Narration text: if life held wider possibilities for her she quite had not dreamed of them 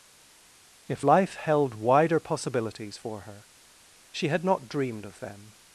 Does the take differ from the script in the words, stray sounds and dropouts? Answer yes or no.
yes